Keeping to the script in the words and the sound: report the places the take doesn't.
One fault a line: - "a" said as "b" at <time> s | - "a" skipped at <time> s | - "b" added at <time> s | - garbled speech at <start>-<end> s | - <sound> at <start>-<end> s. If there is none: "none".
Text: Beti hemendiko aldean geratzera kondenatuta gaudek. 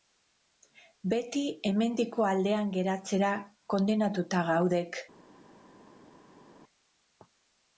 none